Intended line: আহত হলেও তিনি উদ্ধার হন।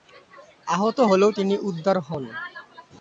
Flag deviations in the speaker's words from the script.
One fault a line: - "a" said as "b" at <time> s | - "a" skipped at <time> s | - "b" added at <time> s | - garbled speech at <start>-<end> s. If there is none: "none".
none